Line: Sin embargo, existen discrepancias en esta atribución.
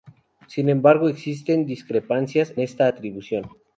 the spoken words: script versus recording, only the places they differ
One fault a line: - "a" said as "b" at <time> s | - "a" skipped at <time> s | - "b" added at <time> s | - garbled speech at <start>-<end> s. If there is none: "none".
- "en" skipped at 2.5 s